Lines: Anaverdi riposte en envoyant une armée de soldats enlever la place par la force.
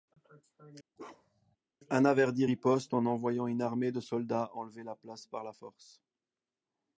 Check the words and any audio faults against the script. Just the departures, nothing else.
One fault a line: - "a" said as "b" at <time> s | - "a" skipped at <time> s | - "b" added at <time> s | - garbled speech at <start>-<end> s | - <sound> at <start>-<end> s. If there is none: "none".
- bark at 1.0-1.6 s